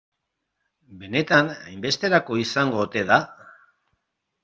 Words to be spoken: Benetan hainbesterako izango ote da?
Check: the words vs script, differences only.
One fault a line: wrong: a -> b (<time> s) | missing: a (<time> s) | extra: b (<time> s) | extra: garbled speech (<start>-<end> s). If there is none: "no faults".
no faults